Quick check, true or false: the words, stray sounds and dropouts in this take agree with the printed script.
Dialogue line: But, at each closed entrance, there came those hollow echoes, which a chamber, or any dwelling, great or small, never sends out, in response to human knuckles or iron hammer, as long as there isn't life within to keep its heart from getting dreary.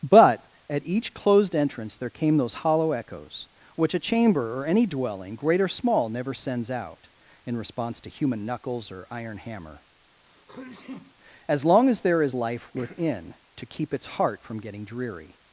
false